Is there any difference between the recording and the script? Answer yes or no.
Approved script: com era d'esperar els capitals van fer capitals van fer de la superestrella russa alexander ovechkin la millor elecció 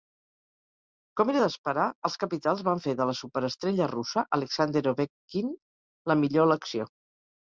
yes